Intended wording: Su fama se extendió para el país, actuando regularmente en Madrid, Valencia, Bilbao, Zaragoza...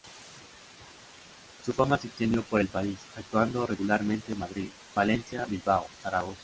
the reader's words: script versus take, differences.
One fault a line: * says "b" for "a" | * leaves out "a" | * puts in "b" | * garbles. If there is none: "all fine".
* says "por" for "para"